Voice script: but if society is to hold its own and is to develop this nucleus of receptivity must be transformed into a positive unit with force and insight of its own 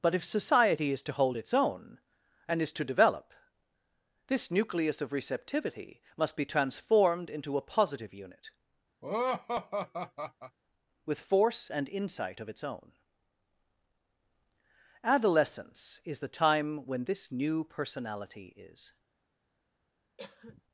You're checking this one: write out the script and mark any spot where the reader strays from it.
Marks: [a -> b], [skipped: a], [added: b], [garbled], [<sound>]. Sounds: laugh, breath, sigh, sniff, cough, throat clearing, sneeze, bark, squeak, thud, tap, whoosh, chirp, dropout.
but if society is to hold its own and is to develop this nucleus of receptivity must be transformed into a positive unit [laugh] with force and insight of its own [added: adolescence is the time when this new personality is] [cough]